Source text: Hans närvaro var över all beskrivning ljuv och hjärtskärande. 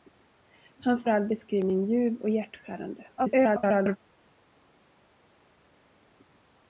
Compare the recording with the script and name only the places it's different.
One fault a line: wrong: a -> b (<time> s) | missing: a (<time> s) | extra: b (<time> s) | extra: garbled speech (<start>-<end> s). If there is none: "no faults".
missing: närvaro var över (1.1 s)
extra: garbled speech (3.2-4.0 s)